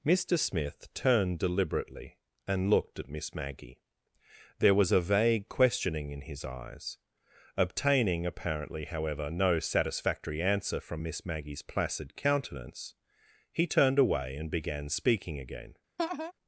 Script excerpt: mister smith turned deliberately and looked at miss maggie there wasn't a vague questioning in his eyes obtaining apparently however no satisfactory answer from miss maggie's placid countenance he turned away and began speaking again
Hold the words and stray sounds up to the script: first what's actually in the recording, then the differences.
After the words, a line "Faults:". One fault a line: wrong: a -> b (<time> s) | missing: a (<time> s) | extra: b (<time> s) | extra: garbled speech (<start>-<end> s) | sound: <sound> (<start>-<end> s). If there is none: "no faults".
mister smith turned deliberately and looked at miss maggie there was a vague questioning in his eyes obtaining apparently however no satisfactory answer from miss maggie's placid countenance he turned away and began speaking again
Faults:
wrong: wasn't -> was (4.7 s)
sound: laugh (16.0-16.3 s)